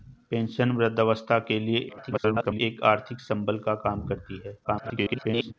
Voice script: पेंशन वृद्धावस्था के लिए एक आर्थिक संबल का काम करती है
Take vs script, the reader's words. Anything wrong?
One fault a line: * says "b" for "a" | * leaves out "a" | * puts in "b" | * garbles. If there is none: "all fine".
* garbles
* garbles